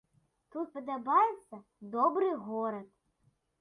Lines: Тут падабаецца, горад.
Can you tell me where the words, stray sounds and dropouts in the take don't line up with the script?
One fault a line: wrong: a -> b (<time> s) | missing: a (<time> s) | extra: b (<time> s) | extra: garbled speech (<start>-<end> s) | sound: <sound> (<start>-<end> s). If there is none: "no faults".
extra: добры (2.0 s)